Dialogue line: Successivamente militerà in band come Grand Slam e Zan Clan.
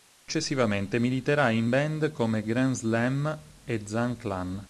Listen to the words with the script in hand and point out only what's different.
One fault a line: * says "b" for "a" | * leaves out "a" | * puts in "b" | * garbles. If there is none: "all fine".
all fine